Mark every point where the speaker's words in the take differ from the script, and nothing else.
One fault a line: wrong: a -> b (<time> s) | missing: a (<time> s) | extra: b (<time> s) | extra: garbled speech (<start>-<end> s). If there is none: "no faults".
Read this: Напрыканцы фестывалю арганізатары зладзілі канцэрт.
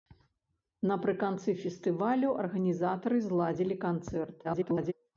extra: garbled speech (4.4-4.9 s)